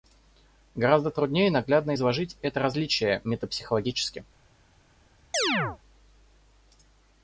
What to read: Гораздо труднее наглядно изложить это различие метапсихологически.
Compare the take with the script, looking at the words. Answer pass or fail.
pass